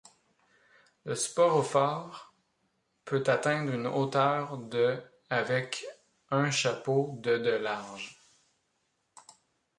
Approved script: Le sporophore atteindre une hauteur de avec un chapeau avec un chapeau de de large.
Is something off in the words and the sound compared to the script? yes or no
yes